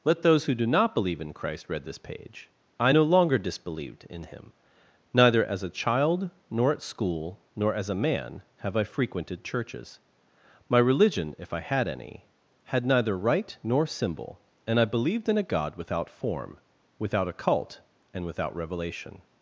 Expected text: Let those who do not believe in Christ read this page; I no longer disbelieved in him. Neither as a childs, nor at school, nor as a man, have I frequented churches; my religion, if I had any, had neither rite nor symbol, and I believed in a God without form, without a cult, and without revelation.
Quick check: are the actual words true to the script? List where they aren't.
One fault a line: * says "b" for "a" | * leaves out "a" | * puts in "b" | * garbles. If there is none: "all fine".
* says "child" for "childs"